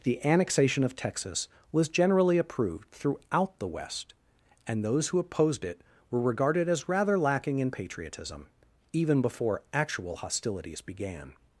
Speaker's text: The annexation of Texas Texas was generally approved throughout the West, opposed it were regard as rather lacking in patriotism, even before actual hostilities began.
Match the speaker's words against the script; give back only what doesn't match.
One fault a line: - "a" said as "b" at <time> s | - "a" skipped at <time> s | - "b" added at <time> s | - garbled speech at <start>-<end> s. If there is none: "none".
- "Texas" skipped at 1.5 s
- "and those who" added at 4.7 s
- "regard" said as "regarded" at 6.2 s